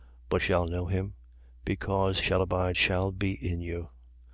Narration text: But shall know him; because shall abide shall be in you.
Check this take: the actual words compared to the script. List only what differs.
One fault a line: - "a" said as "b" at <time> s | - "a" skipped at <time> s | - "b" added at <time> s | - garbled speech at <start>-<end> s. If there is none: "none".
none